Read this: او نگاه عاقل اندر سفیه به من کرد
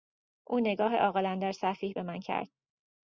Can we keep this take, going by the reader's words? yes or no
yes